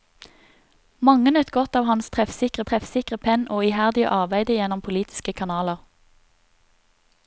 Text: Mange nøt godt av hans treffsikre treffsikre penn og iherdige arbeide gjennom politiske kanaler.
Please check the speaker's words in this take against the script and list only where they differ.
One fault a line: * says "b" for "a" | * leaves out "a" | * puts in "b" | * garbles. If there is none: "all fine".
all fine